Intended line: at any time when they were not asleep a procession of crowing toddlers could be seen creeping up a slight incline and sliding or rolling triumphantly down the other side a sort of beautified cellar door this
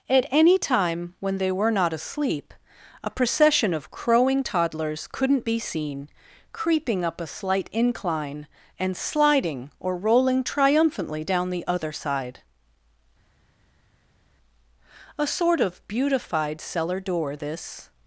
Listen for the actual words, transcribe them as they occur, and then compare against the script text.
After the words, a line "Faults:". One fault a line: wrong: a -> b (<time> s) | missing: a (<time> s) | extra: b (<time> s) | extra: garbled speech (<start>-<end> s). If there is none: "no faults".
at any time when they were not asleep a procession of crowing toddlers couldn't be seen creeping up a slight incline and sliding or rolling triumphantly down the other side a sort of beautified cellar door this
Faults:
wrong: could -> couldn't (5.1 s)